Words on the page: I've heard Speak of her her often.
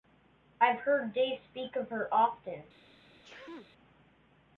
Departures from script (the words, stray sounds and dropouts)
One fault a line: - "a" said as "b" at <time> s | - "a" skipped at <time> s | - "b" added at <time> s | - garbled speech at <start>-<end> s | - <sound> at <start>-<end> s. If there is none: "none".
- "Dave" added at 1.1 s
- "her" skipped at 2.1 s
- sneeze at 3.2-3.7 s